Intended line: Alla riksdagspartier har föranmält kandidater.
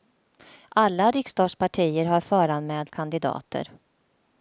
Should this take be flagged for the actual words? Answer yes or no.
no